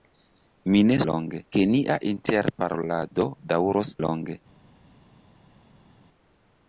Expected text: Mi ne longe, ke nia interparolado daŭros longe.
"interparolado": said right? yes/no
yes